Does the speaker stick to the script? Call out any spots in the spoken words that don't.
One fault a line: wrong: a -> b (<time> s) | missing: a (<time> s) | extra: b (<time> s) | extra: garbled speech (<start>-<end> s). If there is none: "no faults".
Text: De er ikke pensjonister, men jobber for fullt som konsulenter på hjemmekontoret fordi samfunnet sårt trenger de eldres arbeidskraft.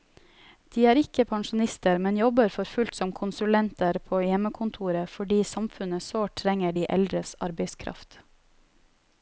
no faults